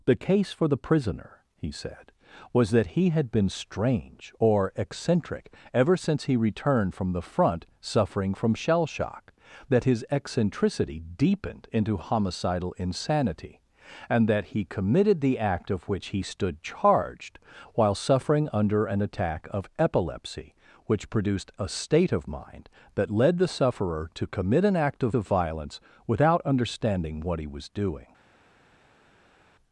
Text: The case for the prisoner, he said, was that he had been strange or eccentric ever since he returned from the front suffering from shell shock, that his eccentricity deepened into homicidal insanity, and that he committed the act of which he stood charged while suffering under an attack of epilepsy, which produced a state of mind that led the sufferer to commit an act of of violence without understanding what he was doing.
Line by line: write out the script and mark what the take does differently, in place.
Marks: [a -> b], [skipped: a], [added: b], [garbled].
The case for the prisoner, he said, was that he had been strange or eccentric ever since he returned from the front suffering from shell shock, that his eccentricity deepened into homicidal insanity, and that he committed the act of which he stood charged while suffering under an attack of epilepsy, which produced a state of mind that led the sufferer to commit an act of of violence without understanding what he was doing.